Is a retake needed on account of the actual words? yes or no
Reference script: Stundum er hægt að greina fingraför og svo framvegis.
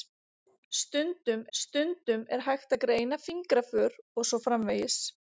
yes